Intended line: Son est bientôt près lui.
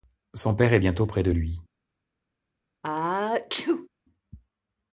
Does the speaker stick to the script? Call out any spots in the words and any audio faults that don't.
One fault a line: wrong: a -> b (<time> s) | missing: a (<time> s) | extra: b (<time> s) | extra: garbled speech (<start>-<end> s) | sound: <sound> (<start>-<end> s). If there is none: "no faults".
extra: père (0.6 s)
extra: de (1.2 s)
sound: sneeze (2.8-3.9 s)